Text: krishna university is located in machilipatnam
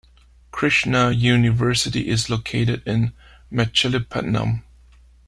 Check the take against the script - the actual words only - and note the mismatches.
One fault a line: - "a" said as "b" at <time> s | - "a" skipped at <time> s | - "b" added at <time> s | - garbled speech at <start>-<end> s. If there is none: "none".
none